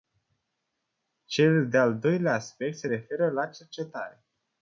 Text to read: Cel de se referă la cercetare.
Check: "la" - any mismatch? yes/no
no